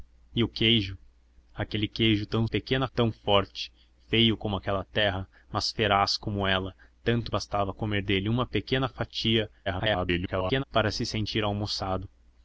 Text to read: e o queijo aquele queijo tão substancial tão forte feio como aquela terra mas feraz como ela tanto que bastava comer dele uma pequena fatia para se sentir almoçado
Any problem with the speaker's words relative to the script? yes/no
yes